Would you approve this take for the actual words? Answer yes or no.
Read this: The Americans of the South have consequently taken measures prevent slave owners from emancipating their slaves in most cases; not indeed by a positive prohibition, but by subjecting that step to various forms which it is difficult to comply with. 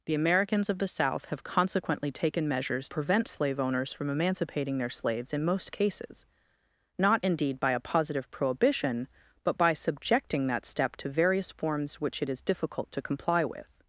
yes